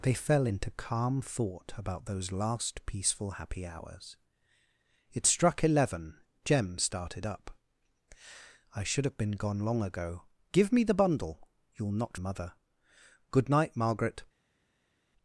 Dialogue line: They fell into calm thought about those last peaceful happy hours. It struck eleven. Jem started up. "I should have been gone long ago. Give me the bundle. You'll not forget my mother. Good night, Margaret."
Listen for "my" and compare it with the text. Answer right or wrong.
wrong